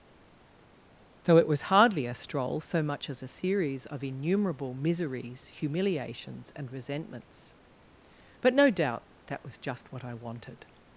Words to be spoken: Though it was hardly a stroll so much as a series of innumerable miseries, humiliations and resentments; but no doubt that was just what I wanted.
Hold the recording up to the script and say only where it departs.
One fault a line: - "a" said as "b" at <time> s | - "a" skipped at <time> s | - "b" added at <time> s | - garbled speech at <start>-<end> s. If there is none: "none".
none